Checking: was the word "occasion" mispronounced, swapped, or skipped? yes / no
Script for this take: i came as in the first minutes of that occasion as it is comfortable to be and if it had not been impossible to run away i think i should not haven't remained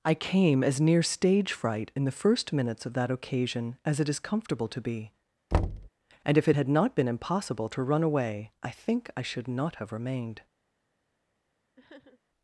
no